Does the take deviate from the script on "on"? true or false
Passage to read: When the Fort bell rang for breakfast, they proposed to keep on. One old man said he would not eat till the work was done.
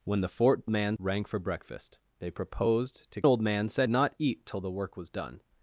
true